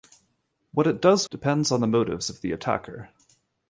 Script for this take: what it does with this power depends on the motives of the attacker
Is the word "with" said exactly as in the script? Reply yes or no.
no